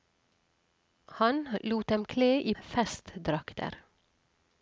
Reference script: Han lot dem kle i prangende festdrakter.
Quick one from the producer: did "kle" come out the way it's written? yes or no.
yes